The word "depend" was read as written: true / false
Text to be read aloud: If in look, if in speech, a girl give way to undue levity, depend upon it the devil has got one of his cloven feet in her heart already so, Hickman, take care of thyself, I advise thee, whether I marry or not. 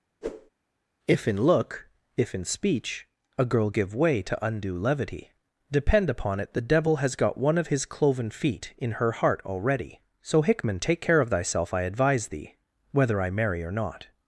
true